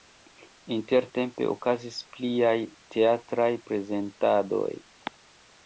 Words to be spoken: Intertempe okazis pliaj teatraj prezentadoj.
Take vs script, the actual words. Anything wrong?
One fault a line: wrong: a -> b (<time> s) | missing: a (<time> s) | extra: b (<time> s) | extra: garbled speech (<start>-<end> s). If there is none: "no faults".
no faults